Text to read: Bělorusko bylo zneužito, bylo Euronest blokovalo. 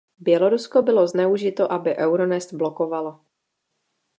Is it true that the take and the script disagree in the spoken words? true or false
true